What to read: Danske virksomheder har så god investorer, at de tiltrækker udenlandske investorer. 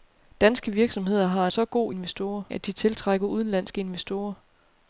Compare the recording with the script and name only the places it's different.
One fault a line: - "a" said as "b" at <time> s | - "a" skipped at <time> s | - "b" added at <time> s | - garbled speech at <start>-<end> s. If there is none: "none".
none